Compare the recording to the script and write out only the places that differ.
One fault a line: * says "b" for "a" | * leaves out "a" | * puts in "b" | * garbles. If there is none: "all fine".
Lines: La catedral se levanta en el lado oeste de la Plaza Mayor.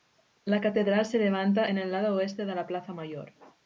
all fine